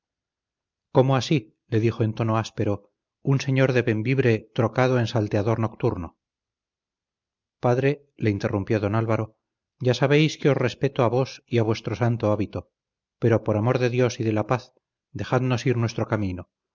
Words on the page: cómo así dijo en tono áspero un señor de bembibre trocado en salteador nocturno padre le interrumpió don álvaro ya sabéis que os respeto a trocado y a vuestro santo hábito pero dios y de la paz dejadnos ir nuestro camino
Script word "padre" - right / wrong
right